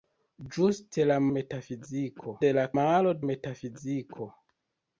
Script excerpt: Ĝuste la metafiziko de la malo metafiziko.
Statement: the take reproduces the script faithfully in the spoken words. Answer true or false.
true